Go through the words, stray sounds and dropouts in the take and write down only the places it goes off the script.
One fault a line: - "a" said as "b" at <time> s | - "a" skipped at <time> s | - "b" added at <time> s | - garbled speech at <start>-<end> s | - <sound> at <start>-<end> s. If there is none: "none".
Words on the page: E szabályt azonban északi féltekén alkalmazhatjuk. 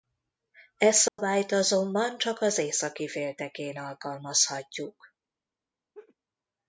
- dropout at 1.1-1.2 s
- "csak az" added at 2.2 s
- laugh at 5.9-6.2 s